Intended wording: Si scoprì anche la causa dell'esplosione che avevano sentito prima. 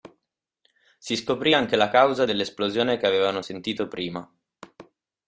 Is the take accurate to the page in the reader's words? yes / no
yes